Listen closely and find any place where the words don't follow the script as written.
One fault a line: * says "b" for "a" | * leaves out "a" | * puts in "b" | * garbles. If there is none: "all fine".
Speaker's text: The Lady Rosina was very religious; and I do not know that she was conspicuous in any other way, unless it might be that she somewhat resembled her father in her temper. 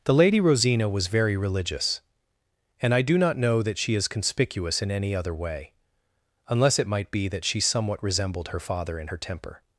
* says "is" for "was"